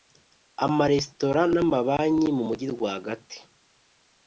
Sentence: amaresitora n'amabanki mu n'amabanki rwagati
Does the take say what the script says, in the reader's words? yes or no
no